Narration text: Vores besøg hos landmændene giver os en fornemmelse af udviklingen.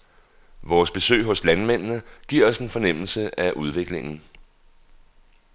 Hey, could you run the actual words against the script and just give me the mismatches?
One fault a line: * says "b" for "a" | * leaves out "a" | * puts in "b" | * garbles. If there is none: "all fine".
all fine